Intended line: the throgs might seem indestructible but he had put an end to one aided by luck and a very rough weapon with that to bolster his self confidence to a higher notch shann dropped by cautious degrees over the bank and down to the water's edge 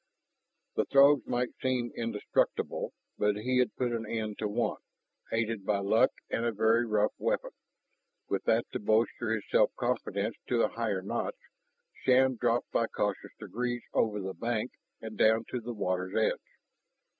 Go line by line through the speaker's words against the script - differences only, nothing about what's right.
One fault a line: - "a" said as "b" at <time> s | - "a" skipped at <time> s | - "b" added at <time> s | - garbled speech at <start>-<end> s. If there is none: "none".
none